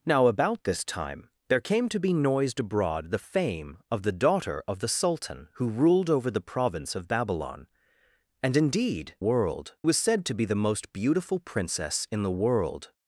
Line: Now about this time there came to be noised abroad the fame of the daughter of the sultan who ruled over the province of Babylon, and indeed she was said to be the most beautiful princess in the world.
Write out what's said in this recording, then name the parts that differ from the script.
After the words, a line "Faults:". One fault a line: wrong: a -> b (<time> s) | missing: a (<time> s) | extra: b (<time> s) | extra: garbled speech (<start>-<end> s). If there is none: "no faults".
Now about this time there came to be noised abroad the fame of the daughter of the sultan who ruled over the province of Babylon, and indeed world was said to be the most beautiful princess in the world.
Faults:
wrong: she -> world (9.2 s)